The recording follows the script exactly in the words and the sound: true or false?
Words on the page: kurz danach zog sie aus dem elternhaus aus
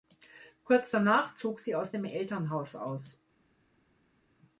true